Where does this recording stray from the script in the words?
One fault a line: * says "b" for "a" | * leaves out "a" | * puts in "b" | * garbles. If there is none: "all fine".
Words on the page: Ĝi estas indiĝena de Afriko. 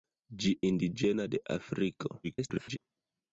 * leaves out "estas"
* garbles